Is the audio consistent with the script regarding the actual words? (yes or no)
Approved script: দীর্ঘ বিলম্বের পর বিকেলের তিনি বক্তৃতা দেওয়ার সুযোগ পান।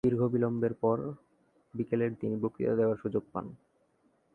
yes